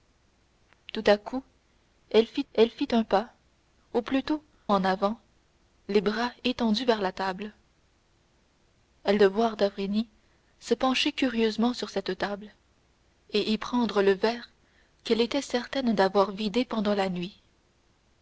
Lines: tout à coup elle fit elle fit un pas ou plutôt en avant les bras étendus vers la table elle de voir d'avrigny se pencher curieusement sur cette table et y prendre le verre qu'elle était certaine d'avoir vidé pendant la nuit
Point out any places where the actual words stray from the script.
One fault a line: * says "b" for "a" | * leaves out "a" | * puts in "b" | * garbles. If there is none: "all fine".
all fine